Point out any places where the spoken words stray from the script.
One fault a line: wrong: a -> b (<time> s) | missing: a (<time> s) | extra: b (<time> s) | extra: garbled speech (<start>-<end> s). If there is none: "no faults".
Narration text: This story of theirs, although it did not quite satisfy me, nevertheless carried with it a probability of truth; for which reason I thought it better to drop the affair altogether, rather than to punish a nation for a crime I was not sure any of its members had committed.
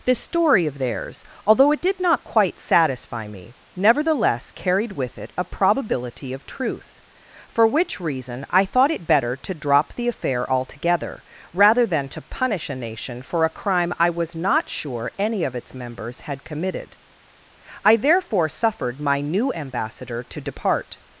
extra: I therefore suffered my new ambassador to depart (17.9 s)